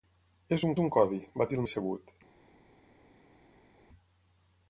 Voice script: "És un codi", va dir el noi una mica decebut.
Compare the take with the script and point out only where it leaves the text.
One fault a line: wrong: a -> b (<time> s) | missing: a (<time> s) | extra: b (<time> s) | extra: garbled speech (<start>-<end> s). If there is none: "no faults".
extra: un (0.8 s)
missing: noi una mica (1.7 s)